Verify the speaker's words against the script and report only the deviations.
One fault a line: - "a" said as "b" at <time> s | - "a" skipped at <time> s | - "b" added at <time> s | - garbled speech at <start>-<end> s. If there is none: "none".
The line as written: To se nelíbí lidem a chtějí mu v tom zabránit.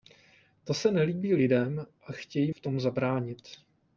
- "mu" skipped at 2.5 s